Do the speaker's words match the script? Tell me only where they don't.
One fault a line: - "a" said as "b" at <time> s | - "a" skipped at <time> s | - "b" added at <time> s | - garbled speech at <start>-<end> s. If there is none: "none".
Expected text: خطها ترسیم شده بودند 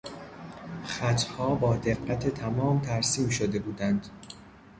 - "با دقت تمام" added at 1.5 s